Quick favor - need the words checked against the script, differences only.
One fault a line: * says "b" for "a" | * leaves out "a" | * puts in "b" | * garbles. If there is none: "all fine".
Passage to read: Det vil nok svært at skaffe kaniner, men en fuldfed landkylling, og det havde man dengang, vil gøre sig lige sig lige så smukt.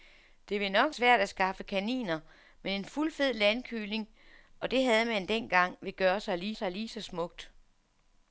all fine